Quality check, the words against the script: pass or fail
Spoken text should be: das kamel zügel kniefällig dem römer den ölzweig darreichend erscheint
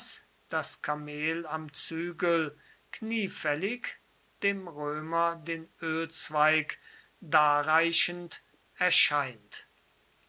fail